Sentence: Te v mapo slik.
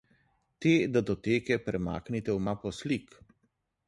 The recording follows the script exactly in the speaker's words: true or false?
false